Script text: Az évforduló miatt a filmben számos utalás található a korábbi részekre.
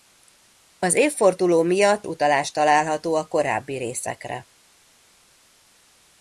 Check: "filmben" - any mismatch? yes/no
yes